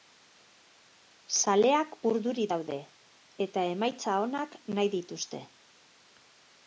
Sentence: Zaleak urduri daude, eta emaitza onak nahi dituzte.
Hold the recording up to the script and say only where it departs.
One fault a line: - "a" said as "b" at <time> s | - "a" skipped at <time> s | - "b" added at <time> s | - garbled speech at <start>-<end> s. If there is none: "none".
none